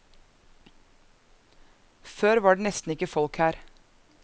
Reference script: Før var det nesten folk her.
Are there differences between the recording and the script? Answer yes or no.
yes